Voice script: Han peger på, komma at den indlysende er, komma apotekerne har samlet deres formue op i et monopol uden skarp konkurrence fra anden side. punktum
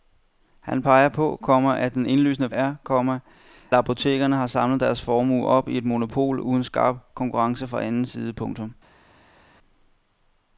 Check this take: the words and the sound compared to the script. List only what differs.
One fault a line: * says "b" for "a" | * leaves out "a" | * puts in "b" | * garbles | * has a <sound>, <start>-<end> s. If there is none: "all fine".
all fine